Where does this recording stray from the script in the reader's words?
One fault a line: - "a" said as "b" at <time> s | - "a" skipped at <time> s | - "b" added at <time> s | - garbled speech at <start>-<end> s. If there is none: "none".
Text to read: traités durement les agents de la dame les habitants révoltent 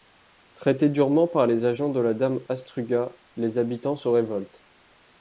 - "par" added at 1.3 s
- "astruga" added at 2.5 s
- "se" added at 4.0 s